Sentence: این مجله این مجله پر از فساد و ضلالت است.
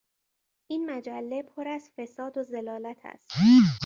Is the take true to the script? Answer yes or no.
no